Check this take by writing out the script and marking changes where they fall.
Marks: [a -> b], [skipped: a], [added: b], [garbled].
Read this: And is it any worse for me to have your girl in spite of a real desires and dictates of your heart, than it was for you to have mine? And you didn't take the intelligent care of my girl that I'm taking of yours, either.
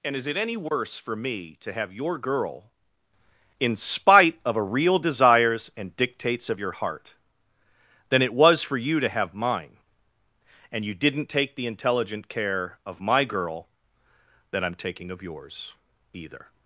And is it any worse for me to have your girl in spite of a real desires and dictates of your heart, than it was for you to have mine? And you didn't take the intelligent care of my girl that I'm taking of yours, either.